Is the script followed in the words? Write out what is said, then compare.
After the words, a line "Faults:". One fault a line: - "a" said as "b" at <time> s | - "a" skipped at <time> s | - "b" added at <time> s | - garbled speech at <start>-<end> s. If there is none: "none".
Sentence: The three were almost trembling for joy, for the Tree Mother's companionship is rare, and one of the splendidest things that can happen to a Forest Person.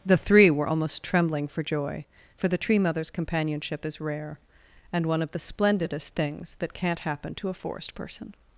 The three were almost trembling for joy, for the Tree Mother's companionship is rare, and one of the splendidest things that can't happen to a Forest Person.
Faults:
- "can" said as "can't" at 6.7 s